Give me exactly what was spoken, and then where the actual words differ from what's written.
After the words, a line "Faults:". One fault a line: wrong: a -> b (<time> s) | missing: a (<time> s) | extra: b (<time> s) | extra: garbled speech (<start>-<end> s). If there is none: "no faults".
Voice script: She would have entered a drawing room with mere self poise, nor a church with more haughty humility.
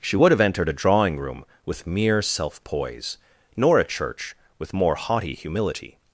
She would have entered a drawing room with mere self poise, nor a church with more haughty humility.
Faults:
no faults